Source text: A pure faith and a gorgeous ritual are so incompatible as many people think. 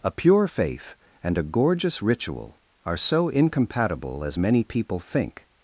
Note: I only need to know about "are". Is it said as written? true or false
true